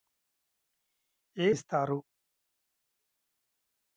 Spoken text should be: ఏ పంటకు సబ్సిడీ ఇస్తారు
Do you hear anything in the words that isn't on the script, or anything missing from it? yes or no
yes